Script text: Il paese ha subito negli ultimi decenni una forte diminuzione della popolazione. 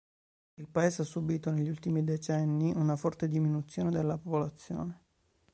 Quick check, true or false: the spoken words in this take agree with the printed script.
true